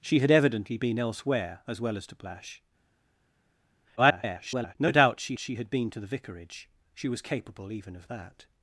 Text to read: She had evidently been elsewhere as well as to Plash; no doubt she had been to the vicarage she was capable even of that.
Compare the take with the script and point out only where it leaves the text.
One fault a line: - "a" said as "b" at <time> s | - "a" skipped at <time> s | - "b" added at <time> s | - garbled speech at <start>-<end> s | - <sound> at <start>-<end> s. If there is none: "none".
- garbled speech at 4.0-4.8 s
- "she" added at 5.4 s